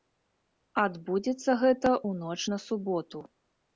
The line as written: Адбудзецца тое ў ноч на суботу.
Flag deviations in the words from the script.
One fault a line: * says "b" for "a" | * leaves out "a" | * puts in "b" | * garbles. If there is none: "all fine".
* says "гэта" for "тое"